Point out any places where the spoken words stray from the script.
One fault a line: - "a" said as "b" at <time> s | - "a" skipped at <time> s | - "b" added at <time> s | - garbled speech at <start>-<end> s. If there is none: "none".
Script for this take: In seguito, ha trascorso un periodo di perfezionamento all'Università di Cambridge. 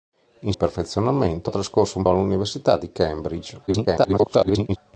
- "seguito" said as "perfezionamento" at 0.5 s
- "periodo di perfezionamento" skipped at 2.0 s
- garbled speech at 3.7-4.8 s